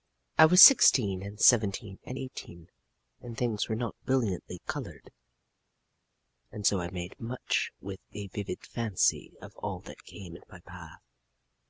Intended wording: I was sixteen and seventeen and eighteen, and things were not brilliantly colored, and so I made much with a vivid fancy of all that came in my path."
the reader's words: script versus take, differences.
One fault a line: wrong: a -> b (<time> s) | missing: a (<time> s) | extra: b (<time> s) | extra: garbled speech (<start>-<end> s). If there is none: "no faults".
no faults